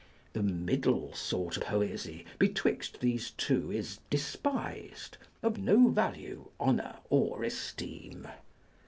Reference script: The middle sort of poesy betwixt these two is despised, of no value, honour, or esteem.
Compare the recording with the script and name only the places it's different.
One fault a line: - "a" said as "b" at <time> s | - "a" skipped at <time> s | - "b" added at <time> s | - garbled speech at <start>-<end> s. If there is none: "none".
- "of" skipped at 1.6 s